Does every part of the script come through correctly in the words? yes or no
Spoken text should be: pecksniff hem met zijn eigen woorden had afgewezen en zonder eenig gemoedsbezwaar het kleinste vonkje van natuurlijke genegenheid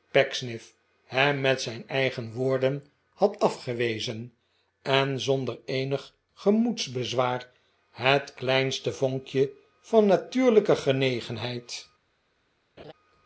yes